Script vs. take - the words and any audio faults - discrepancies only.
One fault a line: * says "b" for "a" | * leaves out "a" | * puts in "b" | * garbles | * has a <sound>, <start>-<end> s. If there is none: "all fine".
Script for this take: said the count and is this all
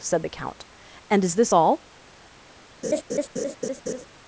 * has a laugh, 2.8-4.1 s